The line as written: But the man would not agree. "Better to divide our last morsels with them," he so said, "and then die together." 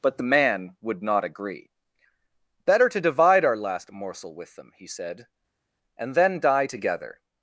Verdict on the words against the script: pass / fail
fail